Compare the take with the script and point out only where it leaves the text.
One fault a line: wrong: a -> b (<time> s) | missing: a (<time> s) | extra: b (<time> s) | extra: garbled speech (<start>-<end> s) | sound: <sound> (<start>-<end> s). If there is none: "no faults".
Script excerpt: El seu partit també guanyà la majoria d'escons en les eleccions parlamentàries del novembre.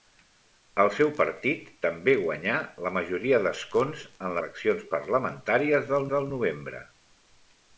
missing: les (4.4 s)
extra: del (6.1 s)